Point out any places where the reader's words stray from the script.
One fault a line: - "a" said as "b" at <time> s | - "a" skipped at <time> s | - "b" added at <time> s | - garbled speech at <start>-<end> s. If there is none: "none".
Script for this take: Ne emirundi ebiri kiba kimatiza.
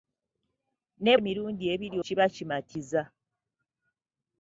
none